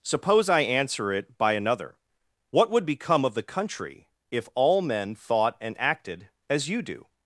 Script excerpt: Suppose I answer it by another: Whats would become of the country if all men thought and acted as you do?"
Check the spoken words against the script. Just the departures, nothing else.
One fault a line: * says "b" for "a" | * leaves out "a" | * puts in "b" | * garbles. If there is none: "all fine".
* says "What" for "Whats"